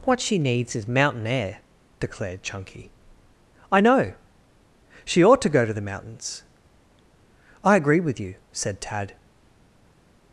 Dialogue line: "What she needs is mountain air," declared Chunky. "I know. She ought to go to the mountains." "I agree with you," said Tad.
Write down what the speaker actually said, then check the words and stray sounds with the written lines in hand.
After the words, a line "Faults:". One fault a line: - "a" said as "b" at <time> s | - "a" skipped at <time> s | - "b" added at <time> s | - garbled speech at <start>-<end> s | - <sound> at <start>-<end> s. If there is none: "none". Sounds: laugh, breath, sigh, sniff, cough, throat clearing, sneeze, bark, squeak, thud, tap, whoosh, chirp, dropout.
"What she needs is mountain air," declared Chunky. "I know. She ought to go to the mountains." "I agree with you," said Tad.
Faults:
none